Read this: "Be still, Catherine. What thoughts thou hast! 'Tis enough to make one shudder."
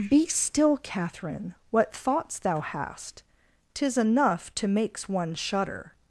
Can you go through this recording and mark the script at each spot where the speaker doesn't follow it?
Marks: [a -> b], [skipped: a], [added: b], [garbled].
"Be still, Catherine. What thoughts thou hast! 'Tis enough to [make -> makes] one shudder."